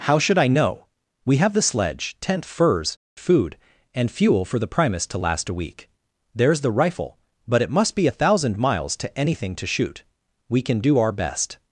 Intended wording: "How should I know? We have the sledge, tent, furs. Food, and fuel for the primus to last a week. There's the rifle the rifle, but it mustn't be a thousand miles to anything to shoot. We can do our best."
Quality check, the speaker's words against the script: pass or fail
fail